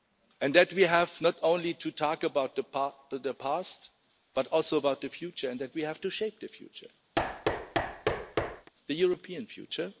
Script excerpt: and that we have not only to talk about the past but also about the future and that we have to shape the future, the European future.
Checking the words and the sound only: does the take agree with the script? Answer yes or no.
no